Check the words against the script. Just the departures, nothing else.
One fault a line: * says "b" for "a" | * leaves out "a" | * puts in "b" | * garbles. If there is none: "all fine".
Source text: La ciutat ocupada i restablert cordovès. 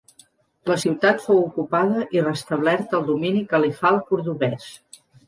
* puts in "fou"
* puts in "el domini califal"